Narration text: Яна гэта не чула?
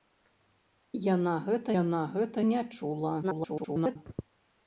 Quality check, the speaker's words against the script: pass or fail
fail